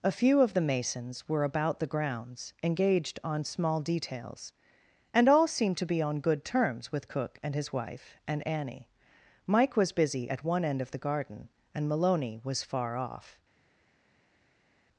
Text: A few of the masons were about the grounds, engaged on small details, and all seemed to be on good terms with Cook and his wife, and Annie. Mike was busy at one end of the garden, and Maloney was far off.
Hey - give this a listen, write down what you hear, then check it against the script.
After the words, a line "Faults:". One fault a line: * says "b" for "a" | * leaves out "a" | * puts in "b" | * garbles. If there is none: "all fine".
A few of the masons were about the grounds, engaged on small details, and all seemed to be on good terms with Cook and his wife, and Annie. Mike was busy at one end of the garden, and Maloney was far off.
Faults:
all fine